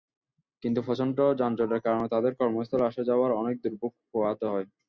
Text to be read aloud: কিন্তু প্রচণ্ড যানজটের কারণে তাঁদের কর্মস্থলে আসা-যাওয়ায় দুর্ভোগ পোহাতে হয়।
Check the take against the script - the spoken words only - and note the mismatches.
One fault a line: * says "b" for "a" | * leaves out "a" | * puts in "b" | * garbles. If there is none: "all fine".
* puts in "অনেক"